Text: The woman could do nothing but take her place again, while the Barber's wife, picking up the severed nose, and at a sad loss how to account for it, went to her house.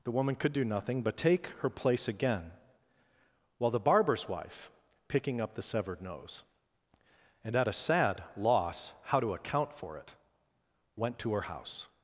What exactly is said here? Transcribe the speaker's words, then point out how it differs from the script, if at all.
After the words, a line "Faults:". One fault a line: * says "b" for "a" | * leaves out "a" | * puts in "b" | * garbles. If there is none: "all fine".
The woman could do nothing but take her place again, while the Barber's wife, picking up the severed nose, and at a sad loss how to account for it, went to her house.
Faults:
all fine